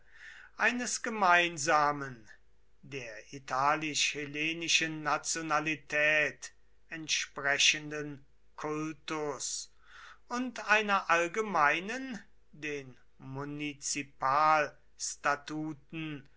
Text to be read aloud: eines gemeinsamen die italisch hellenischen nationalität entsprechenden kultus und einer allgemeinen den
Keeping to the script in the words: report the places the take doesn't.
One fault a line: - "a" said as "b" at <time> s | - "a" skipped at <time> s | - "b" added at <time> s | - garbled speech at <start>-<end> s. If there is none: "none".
- "die" said as "der" at 2.8 s